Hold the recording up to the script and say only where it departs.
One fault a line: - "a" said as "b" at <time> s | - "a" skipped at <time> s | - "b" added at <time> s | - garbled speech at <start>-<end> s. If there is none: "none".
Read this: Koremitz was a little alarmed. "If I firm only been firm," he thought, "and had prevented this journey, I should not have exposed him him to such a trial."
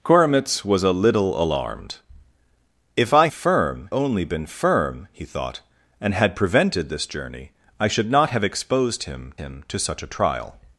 none